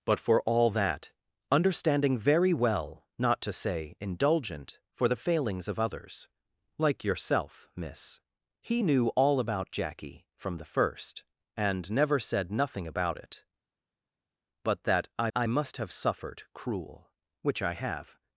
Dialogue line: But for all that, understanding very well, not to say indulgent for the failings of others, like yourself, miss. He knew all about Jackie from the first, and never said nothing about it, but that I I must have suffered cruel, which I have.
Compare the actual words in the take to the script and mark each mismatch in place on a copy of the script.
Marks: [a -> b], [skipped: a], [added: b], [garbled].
But for all that, understanding very well, not to say indulgent for the failings of others, like yourself, miss. He knew all about Jackie from the first, and never said nothing about it, but that I I must have suffered cruel, which I have.